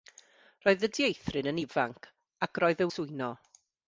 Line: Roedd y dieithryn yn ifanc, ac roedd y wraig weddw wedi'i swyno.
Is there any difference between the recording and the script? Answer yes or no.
yes